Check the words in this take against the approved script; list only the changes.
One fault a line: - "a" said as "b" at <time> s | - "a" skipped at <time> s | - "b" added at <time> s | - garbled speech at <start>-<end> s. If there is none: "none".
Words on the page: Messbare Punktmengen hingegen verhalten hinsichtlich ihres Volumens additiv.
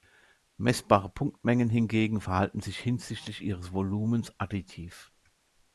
- "sich" added at 2.6 s